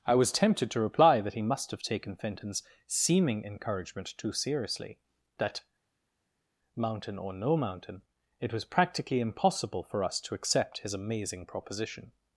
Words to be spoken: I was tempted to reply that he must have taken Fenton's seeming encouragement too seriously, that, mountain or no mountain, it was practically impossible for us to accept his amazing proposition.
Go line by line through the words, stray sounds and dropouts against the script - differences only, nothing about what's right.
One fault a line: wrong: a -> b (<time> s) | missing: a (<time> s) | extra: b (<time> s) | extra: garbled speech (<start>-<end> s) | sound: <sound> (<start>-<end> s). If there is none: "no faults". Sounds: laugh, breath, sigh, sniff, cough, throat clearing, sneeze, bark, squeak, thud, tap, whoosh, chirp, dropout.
no faults